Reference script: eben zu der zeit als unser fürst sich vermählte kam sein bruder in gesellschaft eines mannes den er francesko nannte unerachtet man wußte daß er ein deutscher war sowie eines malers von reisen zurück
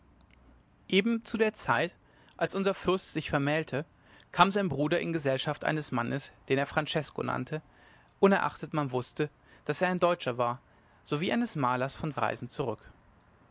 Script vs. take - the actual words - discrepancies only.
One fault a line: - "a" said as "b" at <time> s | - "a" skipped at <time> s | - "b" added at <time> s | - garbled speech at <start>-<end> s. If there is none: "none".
none